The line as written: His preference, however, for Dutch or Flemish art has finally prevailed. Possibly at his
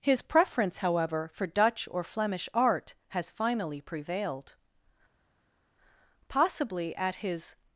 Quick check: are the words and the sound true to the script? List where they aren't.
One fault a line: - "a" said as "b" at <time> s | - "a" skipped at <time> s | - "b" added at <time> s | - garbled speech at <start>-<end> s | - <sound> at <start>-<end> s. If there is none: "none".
none